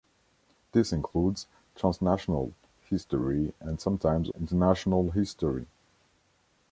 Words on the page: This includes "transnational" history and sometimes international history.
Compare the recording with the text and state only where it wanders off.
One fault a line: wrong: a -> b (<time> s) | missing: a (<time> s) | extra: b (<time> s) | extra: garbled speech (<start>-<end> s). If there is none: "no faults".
no faults